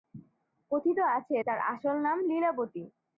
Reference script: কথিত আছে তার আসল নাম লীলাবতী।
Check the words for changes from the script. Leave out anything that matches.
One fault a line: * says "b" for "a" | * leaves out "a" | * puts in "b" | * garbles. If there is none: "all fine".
all fine